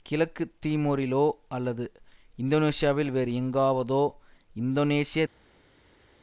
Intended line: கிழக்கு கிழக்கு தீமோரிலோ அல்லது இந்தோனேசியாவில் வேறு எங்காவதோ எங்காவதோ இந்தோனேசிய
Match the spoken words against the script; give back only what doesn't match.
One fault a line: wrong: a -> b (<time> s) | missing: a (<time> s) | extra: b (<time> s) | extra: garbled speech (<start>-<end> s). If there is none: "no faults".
missing: கிழக்கு (0.4 s)
missing: எங்காவதோ (4.0 s)